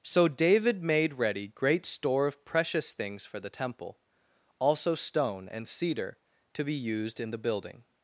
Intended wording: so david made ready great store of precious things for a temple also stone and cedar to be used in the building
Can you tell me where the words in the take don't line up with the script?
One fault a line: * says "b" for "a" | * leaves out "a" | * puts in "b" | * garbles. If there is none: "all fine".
* says "the" for "a"